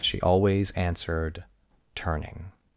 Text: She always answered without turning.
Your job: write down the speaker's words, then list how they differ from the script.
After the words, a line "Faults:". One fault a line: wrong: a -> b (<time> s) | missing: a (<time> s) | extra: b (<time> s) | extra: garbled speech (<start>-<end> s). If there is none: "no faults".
She always answered turning.
Faults:
missing: without (1.4 s)